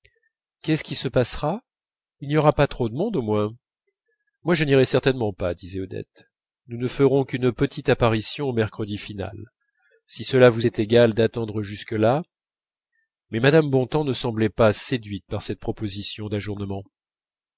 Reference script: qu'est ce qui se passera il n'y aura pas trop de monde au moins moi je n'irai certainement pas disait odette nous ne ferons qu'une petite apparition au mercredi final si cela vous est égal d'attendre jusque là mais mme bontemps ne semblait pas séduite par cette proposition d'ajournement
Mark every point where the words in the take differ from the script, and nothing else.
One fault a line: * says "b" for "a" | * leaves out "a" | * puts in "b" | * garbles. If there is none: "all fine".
all fine